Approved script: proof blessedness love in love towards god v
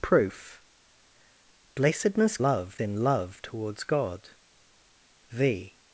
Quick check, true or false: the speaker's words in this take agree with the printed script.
true